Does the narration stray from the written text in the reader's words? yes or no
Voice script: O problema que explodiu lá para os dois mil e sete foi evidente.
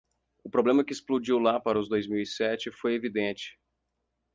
no